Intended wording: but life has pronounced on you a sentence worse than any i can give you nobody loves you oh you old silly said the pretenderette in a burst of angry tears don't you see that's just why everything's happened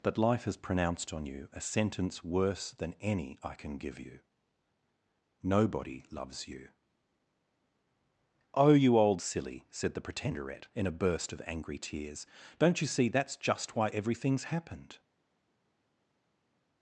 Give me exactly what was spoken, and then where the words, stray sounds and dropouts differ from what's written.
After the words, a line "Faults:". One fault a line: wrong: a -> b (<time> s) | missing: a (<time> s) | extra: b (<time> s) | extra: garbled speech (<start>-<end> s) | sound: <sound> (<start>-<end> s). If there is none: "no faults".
but life has pronounced on you a sentence worse than any i can give you nobody loves you oh you old silly said the pretenderette in a burst of angry tears don't you see that's just why everything's happened
Faults:
no faults